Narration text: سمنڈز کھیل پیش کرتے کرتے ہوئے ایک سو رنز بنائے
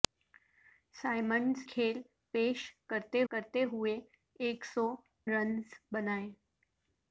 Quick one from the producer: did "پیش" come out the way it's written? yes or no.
yes